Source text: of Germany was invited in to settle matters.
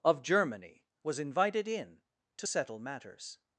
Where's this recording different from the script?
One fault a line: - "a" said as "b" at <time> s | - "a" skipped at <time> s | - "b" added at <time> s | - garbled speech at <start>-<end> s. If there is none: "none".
none